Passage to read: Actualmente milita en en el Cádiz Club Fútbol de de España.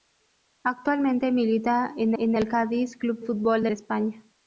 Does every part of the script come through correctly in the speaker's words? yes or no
yes